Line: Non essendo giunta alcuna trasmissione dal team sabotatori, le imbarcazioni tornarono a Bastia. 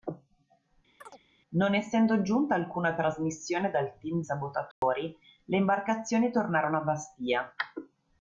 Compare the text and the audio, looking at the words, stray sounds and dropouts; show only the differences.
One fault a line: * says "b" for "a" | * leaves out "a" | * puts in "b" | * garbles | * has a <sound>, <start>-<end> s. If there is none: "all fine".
* has a chirp, 1.0-1.2 s
* has a dropout, 4.7-4.8 s